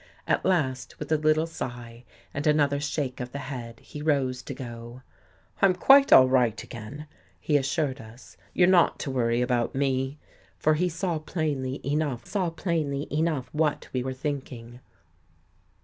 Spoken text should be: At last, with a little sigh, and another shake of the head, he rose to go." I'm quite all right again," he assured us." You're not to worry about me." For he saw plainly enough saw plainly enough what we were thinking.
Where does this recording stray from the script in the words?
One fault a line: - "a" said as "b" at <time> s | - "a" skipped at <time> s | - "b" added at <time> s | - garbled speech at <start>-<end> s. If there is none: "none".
none